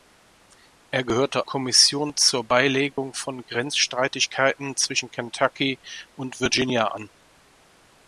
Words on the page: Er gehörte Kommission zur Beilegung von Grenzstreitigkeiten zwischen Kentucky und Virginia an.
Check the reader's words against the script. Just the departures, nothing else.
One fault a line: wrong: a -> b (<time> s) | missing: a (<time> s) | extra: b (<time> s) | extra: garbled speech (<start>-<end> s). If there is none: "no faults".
no faults